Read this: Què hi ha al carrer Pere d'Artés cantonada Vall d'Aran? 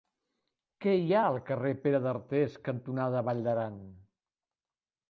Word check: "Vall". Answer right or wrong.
right